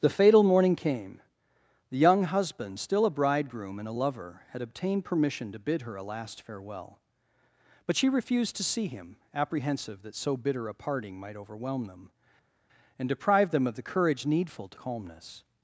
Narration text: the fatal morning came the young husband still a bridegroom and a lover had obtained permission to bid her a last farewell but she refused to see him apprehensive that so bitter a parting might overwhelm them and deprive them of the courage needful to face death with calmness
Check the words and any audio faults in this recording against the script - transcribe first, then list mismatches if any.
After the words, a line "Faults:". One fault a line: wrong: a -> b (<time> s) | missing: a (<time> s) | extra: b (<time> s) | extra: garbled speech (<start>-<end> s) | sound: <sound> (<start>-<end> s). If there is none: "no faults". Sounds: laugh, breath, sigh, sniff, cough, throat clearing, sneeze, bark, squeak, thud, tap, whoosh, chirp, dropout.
the fatal morning came the young husband still a bridegroom and a lover had obtained permission to bid her a last farewell but she refused to see him apprehensive that so bitter a parting might overwhelm them and deprive them of the courage needful to calmness
Faults:
missing: face death with (14.8 s)